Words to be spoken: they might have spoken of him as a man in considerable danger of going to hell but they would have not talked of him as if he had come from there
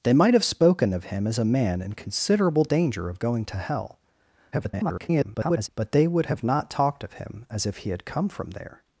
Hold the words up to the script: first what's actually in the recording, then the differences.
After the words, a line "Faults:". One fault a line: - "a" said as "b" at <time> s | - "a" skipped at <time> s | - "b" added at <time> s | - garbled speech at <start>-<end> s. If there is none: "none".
they might have spoken of him as a man in considerable danger of going to hell [garbled] but they would have not talked of him as if he had come from there
Faults:
- garbled speech at 4.5-5.7 s